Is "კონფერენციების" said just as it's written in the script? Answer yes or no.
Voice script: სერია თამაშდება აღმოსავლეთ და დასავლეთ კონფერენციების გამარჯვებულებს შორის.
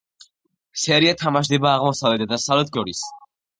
no